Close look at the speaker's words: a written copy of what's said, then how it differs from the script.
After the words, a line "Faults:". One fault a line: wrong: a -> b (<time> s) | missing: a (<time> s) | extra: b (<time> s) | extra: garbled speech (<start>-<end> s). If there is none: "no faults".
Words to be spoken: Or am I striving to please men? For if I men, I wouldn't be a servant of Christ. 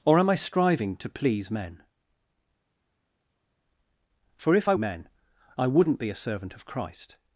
Or am I striving to please men? For if I men, I wouldn't be a servant of Christ.
Faults:
no faults